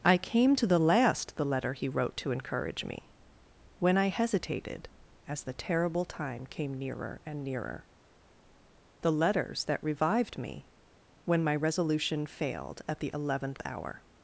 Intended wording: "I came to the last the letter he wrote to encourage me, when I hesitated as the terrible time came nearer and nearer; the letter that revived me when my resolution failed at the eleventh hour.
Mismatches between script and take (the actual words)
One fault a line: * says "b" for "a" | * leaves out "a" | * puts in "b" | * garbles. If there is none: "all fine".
* says "letters" for "letter"